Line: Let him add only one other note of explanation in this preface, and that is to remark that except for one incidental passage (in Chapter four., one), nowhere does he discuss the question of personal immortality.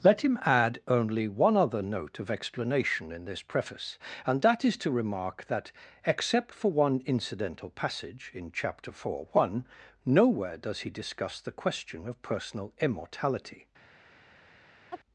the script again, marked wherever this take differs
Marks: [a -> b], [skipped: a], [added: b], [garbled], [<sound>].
Let him add only one other note of explanation in this preface, and that is to remark that except for one incidental passage (in Chapter four., one), nowhere does he discuss the question of personal immortality. [chirp]